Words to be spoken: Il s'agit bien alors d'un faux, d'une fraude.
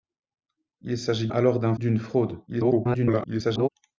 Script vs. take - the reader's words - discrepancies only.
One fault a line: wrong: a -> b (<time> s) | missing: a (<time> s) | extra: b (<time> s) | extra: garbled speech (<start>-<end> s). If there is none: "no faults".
missing: bien (1.3 s)
missing: faux (1.7 s)
extra: garbled speech (2.5-3.7 s)